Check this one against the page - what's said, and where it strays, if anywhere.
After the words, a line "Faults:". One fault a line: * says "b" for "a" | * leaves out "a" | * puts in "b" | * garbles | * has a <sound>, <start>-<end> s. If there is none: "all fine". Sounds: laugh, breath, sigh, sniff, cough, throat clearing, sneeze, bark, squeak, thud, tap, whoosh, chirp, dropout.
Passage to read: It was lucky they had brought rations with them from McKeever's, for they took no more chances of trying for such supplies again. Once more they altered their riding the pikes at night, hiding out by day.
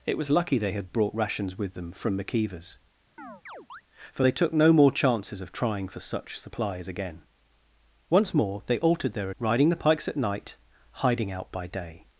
It was lucky they had brought rations with them from McKeever's, for they took no more chances of trying for such supplies again. Once more they altered their riding the pikes at night, hiding out by day.
Faults:
* has a chirp, 3.2-3.8 s